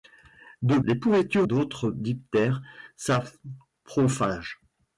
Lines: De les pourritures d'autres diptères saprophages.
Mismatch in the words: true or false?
false